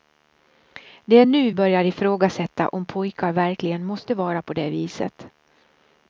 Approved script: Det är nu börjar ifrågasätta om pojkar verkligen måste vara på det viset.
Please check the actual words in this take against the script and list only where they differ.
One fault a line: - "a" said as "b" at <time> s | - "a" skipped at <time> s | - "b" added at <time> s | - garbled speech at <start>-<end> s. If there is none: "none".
none